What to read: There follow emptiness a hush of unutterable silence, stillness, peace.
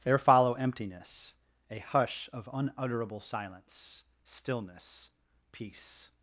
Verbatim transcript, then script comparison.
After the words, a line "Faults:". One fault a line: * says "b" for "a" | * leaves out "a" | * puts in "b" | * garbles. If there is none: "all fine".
There follow emptiness a hush of unutterable silence, stillness, peace.
Faults:
all fine